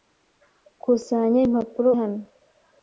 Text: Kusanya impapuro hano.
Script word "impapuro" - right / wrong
right